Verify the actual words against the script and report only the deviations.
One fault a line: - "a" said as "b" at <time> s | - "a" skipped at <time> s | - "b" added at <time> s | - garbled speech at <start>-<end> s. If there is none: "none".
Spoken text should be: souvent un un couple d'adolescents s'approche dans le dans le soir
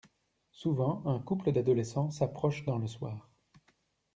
- "un" skipped at 1.2 s
- "dans le" skipped at 2.9 s